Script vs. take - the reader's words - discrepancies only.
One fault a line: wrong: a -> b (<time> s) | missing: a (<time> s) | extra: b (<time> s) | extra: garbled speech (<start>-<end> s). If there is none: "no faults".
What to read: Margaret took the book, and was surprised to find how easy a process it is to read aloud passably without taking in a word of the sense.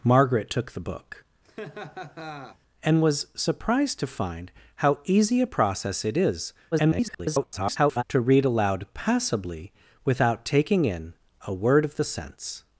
extra: garbled speech (6.7-8.0 s)